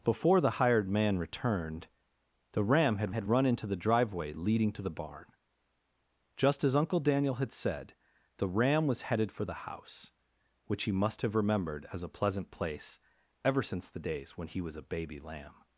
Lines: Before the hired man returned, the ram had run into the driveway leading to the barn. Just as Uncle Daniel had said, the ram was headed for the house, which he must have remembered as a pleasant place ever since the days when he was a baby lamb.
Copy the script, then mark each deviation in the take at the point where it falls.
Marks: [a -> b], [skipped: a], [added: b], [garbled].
Before the hired man returned, the ram had [added: had] run into the driveway leading to the barn. Just as Uncle Daniel had said, the ram was headed for the house, which he must have remembered as a pleasant place ever since the days when he was a baby lamb.